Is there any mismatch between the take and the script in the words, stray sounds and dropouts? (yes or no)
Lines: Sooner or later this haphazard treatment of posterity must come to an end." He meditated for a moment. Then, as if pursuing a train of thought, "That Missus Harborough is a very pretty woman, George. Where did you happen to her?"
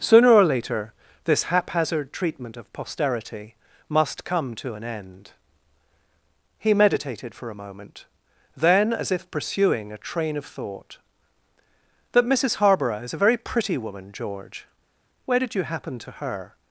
no